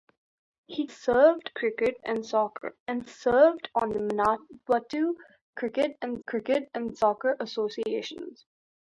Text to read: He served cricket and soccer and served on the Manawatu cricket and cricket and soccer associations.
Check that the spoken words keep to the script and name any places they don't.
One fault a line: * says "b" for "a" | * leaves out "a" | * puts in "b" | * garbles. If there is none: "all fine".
all fine